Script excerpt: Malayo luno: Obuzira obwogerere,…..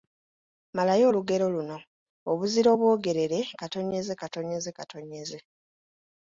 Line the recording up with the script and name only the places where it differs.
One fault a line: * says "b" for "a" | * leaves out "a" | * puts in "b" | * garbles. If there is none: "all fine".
* puts in "olugero"